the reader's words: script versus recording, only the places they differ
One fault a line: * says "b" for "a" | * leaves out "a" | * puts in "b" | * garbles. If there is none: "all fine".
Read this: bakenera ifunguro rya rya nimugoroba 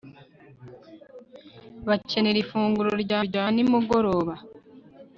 all fine